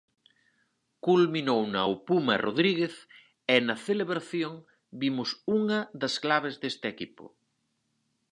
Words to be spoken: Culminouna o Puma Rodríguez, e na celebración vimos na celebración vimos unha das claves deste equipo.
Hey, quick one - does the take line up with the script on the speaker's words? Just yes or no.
no